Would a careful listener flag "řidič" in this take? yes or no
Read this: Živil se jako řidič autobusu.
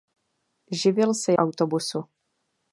yes